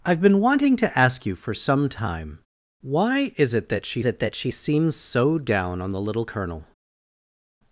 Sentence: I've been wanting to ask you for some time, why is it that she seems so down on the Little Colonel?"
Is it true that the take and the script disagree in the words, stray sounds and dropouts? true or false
true